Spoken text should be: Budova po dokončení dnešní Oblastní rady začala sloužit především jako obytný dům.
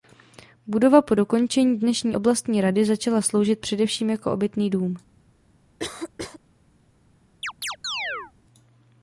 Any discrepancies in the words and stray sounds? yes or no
yes